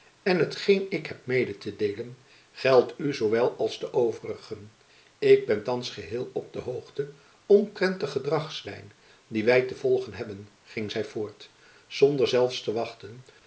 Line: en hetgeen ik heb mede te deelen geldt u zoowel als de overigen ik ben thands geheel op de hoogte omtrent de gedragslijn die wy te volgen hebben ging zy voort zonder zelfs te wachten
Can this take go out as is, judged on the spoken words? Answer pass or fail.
pass